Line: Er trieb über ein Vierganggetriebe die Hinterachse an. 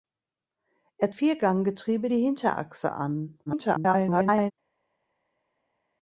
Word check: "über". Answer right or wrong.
wrong